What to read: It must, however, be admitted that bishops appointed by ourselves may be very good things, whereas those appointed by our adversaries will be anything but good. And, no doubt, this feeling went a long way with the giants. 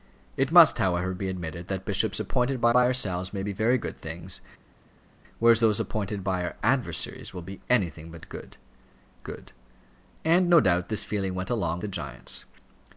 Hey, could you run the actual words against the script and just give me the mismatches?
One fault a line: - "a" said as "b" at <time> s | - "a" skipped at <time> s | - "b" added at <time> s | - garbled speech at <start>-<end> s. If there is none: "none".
- "by" added at 2.7 s
- "good" added at 9.2 s
- "way with" skipped at 11.8 s